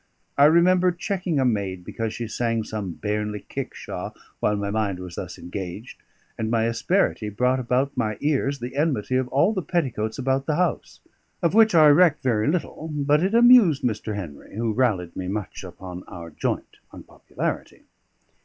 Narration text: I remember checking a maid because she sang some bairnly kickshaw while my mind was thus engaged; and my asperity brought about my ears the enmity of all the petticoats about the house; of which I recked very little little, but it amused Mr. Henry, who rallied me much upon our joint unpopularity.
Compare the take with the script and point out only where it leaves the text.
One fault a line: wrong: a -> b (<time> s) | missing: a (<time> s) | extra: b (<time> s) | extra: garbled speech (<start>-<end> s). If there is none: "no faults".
missing: little (12.9 s)